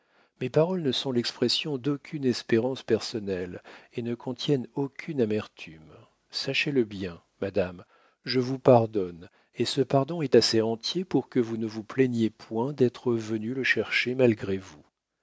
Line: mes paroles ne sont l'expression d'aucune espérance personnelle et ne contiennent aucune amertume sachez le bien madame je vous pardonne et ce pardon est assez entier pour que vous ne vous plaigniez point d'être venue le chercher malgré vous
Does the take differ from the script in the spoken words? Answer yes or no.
no